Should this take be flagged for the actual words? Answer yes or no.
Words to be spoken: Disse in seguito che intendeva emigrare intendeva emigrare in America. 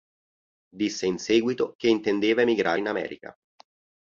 yes